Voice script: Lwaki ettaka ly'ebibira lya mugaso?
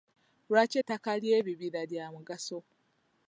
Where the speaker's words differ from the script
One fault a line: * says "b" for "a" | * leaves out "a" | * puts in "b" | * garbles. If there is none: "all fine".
all fine